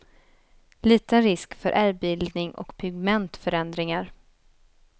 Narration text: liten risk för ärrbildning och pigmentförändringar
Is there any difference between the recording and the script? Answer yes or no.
no